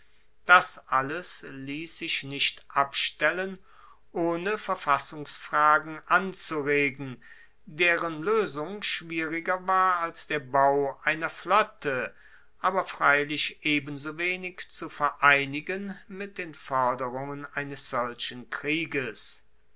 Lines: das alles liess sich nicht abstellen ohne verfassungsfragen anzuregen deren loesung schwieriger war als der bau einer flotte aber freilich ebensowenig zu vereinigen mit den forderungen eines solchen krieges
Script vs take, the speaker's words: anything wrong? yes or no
no